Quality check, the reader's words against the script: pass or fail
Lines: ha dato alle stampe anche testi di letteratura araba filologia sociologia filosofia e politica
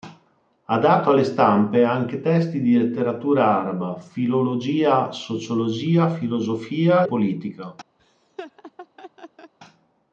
fail